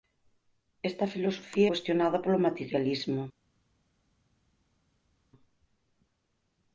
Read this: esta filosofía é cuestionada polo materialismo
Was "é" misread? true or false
true